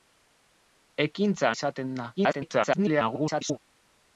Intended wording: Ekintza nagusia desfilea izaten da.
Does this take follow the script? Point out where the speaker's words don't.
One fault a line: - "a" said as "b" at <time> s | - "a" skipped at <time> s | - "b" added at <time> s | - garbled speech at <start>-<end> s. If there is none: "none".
- "nagusia desfilea" skipped at 1.5 s
- garbled speech at 2.2-3.6 s